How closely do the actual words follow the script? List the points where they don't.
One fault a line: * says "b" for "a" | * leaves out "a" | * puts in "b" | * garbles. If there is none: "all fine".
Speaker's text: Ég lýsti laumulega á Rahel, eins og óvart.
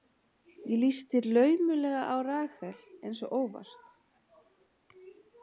all fine